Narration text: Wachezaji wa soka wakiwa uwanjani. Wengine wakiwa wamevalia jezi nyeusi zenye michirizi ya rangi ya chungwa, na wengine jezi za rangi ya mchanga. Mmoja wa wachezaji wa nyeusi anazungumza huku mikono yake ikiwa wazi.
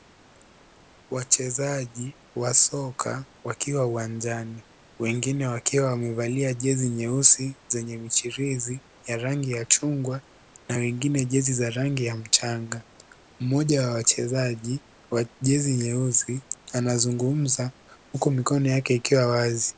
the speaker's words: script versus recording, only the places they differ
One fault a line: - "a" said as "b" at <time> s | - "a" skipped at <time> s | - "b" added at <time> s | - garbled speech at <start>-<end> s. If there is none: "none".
- "jezi" added at 15.4 s